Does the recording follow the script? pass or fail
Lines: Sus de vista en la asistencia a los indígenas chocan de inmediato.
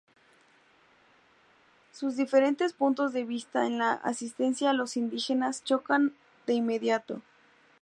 fail